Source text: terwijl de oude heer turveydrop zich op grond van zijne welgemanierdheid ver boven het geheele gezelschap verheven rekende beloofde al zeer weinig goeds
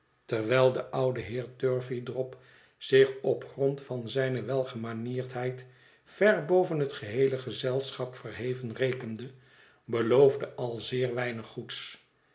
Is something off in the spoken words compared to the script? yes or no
no